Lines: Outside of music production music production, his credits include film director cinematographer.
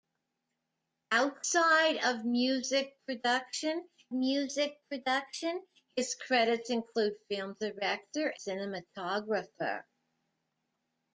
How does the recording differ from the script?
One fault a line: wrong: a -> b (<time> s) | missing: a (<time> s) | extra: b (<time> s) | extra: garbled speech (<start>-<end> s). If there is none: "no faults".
no faults